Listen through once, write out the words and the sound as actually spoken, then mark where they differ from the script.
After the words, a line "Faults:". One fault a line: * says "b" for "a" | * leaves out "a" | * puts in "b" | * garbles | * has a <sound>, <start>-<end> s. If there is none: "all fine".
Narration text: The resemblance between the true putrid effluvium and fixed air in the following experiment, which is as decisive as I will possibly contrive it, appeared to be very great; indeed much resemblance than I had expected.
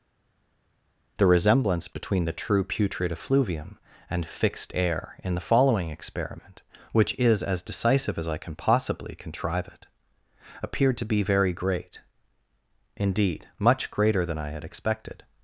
The resemblance between the true putrid effluvium and fixed air in the following experiment, which is as decisive as I can possibly contrive it, appeared to be very great; indeed much greater than I had expected.
Faults:
* says "can" for "will"
* says "greater" for "resemblance"